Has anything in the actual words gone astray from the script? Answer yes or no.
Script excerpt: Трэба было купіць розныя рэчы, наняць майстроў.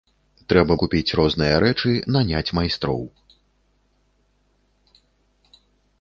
yes